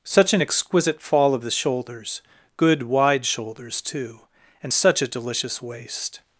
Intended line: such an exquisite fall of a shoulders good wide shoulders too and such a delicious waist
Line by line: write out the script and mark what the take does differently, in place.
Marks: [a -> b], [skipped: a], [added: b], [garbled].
such an exquisite fall of [a -> the] shoulders good wide shoulders too and such a delicious waist